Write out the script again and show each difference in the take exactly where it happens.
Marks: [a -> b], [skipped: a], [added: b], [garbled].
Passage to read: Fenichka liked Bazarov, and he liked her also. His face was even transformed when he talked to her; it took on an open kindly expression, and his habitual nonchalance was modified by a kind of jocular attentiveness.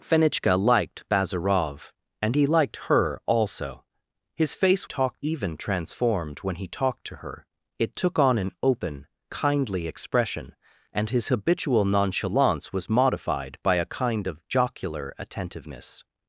Fenichka liked Bazarov, and he liked her also. His face [was -> talked] even transformed when he talked to her; it took on an open kindly expression, and his habitual nonchalance was modified by a kind of jocular attentiveness.